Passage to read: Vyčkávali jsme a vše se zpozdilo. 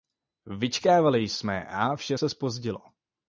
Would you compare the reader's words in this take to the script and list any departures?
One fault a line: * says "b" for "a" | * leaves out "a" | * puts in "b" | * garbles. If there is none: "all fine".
all fine